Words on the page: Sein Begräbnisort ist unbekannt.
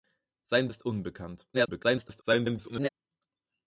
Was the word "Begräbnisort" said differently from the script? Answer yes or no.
yes